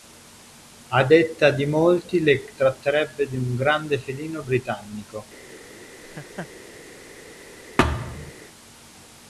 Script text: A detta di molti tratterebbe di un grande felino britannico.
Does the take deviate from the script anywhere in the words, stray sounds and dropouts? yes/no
yes